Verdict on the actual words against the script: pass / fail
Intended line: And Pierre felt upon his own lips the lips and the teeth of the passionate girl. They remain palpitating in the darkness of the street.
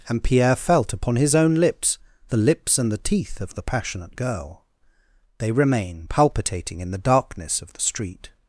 pass